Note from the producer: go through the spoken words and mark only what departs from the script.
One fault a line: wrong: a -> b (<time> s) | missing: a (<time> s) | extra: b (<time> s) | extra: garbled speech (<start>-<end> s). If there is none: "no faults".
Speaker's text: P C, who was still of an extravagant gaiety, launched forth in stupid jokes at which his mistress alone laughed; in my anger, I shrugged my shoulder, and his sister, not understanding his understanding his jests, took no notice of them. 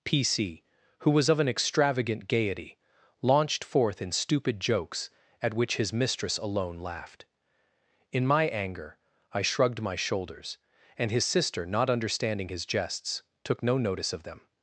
missing: still (1.3 s)
wrong: shoulder -> shoulders (9.9 s)
missing: understanding his (12.6 s)